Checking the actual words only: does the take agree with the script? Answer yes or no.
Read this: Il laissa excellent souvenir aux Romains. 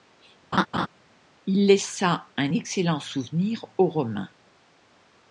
no